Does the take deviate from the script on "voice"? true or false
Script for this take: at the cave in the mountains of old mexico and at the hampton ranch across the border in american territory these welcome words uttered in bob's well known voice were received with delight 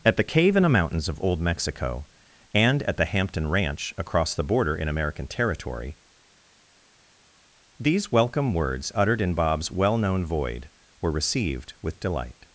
true